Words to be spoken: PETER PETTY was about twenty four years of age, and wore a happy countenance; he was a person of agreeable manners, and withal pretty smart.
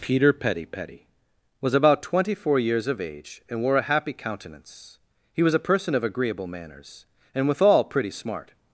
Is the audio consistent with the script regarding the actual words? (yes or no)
no